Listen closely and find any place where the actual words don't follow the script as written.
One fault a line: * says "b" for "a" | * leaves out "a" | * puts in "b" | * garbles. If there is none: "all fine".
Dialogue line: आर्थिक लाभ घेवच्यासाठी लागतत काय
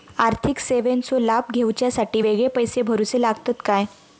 * puts in "सेवेंचो"
* puts in "वेगळे पैसे भरुचे"